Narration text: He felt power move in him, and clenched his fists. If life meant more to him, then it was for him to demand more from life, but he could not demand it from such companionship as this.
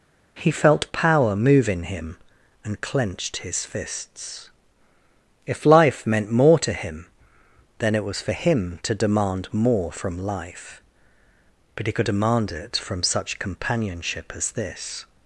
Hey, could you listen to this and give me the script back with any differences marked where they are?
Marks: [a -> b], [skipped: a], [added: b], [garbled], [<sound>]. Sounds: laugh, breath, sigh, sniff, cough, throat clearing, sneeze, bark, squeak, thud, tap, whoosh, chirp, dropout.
He felt power move in him, and clenched his fists. If life meant more to him, then it was for him to demand more from life, but he could [skipped: not] demand it from such companionship as this.